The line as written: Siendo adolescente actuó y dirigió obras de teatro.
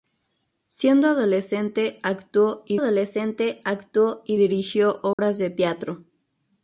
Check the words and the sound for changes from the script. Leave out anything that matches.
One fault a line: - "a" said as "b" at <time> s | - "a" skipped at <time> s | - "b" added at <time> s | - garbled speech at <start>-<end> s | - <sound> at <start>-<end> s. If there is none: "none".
- "adolescente actuó y" added at 2.7 s
- dropout at 5.1-5.2 s